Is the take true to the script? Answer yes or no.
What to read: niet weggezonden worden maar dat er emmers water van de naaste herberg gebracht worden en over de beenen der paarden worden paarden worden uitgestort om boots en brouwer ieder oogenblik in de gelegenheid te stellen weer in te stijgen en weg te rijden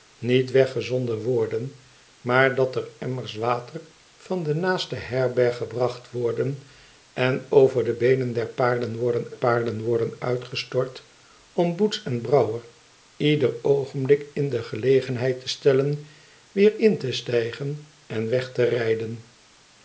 yes